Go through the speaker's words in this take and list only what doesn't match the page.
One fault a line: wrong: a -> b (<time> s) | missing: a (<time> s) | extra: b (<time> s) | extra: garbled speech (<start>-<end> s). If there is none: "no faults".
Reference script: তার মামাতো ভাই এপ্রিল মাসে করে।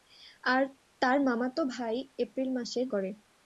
no faults